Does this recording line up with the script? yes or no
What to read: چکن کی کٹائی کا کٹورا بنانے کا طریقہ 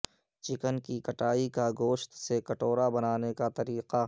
no